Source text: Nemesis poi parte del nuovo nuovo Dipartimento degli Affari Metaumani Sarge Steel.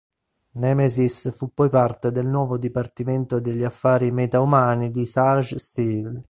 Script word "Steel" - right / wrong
right